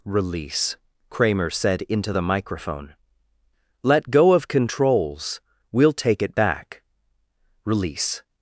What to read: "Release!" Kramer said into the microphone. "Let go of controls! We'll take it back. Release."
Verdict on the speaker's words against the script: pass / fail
pass